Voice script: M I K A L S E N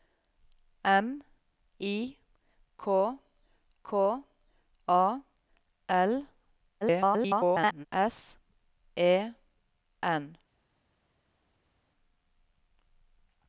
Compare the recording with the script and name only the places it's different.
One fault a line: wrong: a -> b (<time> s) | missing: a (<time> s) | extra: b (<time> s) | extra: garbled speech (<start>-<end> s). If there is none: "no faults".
extra: K (3.8 s)
extra: garbled speech (6.8-7.9 s)